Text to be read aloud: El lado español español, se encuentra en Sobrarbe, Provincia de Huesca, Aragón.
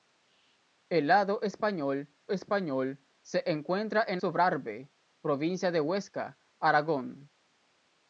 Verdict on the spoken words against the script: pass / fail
pass